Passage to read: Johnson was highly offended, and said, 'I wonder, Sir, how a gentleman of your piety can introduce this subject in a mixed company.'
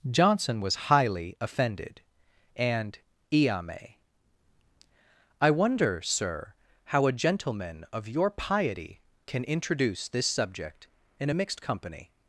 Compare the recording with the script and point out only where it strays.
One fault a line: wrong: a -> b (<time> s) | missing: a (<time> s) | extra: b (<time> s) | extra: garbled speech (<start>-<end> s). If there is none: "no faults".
wrong: said -> iame (3.3 s)